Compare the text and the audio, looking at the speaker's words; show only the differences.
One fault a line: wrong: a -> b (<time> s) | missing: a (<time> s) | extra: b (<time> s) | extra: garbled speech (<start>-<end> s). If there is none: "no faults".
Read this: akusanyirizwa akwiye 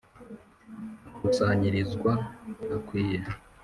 no faults